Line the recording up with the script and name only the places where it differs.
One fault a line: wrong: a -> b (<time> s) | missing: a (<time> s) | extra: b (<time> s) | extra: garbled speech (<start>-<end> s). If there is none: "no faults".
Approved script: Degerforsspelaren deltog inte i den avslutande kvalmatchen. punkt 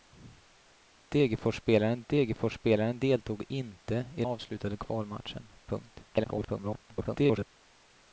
extra: degerforsspelaren (2.1 s)
missing: den (4.2 s)
extra: garbled speech (6.1-7.5 s)